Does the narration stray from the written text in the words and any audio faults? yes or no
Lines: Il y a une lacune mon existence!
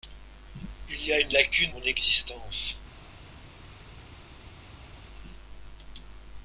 no